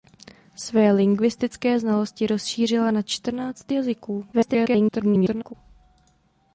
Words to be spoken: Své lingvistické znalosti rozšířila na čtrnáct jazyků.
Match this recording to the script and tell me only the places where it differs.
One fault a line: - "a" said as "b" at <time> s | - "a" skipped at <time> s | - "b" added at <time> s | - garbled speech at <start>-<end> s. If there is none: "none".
- garbled speech at 4.3-5.5 s